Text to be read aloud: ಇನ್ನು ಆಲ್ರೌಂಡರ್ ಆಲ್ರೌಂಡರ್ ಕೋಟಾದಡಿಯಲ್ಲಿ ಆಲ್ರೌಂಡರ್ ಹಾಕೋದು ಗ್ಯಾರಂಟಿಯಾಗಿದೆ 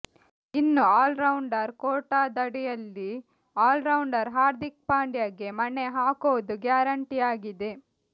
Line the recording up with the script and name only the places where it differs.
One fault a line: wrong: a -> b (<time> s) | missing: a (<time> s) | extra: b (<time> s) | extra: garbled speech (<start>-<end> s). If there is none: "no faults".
extra: ಕೋಟಾದಡಿಯಲ್ಲಿ (1.8 s)
wrong: ಕೋಟಾದಡಿಯಲ್ಲಿ ಆಲ್ರೌಂಡರ್ -> ಹಾರ್ದಿಕ್ ಪಾಂಡ್ಯಗೆ ಮಣೆ (4.4 s)